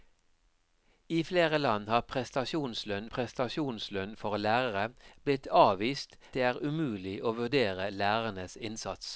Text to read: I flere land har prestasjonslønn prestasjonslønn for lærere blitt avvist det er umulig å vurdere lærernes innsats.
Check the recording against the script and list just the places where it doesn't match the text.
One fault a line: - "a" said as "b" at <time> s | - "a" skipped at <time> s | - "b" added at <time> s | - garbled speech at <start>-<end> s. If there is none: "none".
none